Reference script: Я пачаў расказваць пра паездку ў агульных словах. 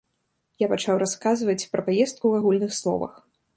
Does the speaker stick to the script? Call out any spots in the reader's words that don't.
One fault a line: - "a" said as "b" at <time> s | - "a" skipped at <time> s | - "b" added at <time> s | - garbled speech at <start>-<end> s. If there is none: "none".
none